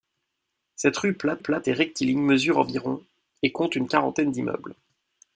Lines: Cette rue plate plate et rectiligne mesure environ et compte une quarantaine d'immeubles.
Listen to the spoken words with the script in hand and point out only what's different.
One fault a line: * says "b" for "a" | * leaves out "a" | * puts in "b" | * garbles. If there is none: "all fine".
all fine